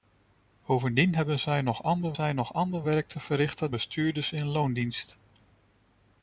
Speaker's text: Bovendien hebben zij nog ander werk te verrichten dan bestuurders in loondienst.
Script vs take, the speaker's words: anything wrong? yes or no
yes